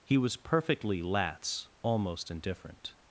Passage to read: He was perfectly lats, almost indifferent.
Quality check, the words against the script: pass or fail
pass